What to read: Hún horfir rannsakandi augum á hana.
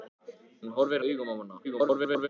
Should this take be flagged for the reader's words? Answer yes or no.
yes